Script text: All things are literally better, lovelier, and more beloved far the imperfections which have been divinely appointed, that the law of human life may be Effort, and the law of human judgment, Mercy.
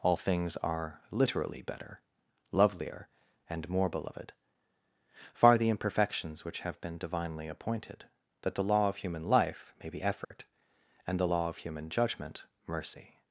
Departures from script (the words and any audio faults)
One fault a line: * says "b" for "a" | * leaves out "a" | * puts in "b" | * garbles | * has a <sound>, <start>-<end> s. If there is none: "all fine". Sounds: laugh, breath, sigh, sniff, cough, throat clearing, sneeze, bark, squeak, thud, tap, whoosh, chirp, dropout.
* has a dropout, 10.2-10.3 s